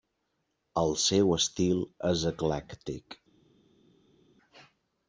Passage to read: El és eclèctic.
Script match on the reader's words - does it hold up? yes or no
no